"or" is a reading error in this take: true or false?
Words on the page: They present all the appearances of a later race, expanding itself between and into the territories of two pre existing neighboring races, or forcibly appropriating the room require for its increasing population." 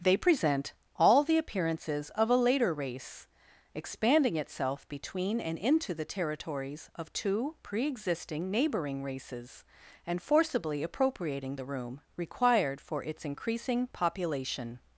true